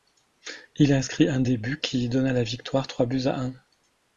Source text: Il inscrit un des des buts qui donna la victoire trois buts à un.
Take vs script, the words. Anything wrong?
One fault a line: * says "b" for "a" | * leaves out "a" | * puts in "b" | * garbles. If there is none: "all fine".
* leaves out "des"